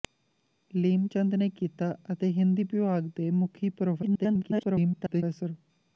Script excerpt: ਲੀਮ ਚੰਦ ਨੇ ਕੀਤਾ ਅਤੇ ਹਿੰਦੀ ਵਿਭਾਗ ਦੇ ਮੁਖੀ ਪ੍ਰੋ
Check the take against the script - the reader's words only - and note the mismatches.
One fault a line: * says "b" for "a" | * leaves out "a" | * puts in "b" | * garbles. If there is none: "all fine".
* garbles